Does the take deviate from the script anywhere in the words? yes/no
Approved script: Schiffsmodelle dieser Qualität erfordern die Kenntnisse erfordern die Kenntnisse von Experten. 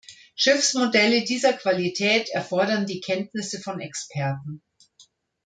yes